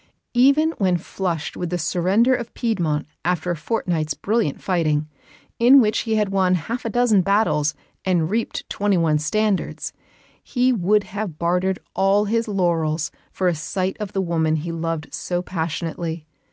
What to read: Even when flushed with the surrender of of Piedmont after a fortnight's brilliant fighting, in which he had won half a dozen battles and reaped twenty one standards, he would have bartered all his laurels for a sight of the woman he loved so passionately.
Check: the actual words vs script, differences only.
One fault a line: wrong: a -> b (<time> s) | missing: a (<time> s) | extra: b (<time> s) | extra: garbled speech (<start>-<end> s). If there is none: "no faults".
missing: of (2.5 s)